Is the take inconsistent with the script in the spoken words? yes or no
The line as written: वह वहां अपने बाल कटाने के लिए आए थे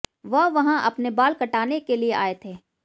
no